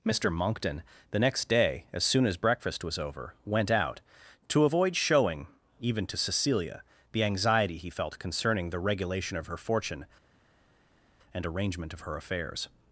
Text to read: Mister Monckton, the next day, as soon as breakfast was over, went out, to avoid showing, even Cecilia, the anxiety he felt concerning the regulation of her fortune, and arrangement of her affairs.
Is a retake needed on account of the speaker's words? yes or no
yes